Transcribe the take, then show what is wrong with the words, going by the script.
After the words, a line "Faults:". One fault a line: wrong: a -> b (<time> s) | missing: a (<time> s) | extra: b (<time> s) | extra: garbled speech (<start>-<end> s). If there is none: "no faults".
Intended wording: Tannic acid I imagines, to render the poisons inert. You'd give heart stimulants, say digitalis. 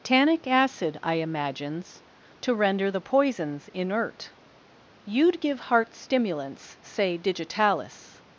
Tannic acid I imagines, to render the poisons inert. You'd give heart stimulants, say digitalis.
Faults:
no faults